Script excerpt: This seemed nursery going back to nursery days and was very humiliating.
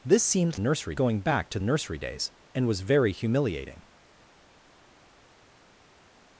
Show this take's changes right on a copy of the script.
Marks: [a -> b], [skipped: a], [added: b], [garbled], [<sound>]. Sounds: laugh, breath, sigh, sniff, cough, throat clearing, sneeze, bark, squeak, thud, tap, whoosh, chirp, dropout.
This seemed nursery going back to nursery days and was very humiliating.